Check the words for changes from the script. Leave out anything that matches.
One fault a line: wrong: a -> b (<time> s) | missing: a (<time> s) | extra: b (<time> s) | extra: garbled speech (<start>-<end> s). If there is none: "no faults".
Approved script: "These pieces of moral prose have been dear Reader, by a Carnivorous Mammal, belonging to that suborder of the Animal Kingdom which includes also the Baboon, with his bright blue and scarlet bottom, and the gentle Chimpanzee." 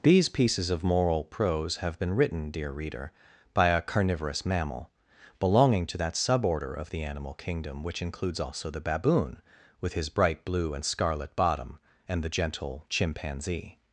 extra: written (2.1 s)